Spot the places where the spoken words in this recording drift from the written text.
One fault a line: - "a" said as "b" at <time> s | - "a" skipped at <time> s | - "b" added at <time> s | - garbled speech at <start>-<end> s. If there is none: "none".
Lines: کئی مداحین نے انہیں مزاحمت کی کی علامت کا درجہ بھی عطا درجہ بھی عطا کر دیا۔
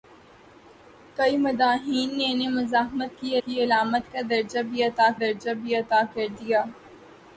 none